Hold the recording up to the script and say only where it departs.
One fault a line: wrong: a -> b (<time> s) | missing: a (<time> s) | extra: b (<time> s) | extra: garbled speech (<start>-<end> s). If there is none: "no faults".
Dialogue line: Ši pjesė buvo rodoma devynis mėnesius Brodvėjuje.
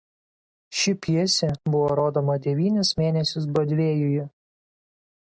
no faults